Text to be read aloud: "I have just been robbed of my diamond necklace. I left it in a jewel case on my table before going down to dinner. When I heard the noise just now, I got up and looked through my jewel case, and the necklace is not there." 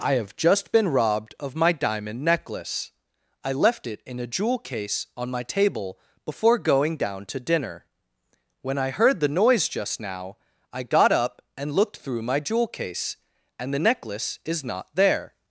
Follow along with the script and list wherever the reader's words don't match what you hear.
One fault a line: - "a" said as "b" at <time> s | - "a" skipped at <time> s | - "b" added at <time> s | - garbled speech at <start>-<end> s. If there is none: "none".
none